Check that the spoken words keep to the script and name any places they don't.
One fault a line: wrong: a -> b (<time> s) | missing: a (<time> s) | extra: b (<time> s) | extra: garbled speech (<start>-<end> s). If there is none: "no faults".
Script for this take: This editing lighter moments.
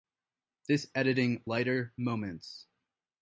no faults